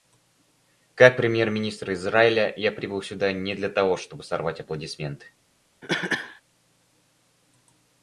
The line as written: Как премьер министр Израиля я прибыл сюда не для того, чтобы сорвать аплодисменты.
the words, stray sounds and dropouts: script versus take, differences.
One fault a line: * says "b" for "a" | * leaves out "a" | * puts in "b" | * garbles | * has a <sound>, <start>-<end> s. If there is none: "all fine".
* has a cough, 5.8-6.4 s